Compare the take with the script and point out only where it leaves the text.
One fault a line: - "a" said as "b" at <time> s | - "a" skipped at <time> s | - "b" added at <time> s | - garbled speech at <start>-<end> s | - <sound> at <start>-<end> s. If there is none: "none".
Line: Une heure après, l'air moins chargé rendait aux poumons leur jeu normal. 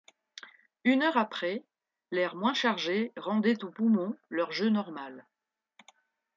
none